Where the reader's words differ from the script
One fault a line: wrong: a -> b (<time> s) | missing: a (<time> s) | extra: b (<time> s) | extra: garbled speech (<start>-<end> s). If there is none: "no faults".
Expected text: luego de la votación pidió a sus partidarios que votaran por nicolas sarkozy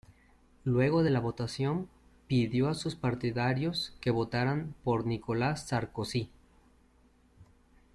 no faults